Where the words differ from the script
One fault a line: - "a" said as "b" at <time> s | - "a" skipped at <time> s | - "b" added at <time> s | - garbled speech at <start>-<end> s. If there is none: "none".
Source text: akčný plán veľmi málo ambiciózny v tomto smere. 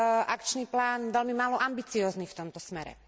none